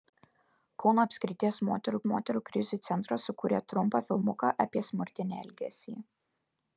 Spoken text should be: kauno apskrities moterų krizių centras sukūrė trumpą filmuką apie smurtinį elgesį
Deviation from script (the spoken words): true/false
true